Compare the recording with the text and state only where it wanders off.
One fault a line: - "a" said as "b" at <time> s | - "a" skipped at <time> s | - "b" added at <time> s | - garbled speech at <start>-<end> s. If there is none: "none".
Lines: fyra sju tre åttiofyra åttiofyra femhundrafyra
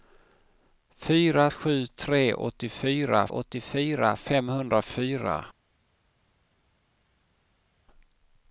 none